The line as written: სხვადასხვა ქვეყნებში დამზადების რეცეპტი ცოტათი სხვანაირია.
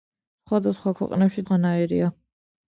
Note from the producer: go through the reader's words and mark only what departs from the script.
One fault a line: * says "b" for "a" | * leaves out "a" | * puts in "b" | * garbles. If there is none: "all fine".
* leaves out "დამზადების რეცეპტი ცოტათი"